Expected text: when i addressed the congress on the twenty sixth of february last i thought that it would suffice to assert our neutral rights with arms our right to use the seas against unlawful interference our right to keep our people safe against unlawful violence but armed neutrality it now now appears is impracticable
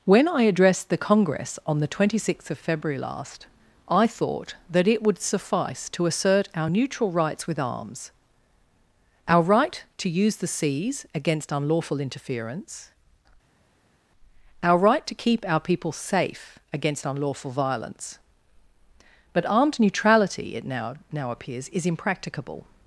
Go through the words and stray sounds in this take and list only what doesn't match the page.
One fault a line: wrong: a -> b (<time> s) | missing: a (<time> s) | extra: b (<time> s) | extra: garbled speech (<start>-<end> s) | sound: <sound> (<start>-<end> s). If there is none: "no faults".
no faults